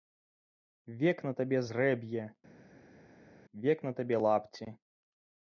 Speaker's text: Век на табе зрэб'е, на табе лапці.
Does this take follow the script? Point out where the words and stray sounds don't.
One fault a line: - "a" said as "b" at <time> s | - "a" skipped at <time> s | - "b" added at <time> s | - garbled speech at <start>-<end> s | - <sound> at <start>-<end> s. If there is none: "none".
- "век" added at 3.7 s